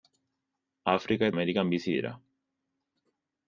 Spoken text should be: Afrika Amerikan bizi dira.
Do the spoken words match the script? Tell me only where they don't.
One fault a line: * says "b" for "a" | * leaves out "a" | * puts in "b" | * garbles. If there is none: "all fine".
all fine